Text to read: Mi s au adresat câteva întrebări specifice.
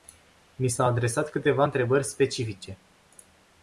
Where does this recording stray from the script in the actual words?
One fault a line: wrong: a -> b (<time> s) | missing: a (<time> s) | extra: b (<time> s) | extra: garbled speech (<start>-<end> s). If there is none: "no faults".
no faults